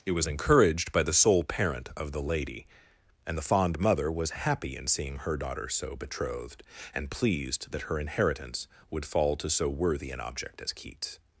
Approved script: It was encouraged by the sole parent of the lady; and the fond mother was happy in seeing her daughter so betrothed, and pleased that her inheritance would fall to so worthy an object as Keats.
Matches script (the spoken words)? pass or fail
pass